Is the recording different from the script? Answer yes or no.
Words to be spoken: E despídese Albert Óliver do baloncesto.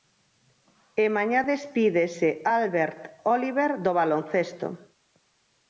yes